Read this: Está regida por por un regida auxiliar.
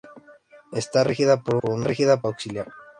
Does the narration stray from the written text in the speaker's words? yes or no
no